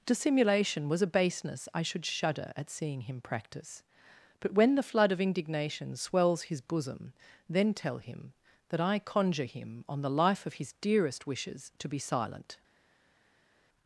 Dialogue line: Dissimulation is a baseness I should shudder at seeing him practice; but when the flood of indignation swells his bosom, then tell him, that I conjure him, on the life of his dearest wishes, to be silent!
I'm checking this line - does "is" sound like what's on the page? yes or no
no